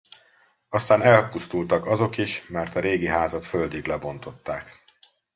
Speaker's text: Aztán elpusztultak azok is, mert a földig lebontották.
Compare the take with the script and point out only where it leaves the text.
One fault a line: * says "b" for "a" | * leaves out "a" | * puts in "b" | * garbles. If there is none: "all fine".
* puts in "régi házat"